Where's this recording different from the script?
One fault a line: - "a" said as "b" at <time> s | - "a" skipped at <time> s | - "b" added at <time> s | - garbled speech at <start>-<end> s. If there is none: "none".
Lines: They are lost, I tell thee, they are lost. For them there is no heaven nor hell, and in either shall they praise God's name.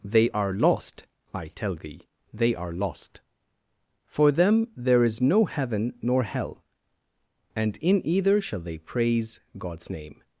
none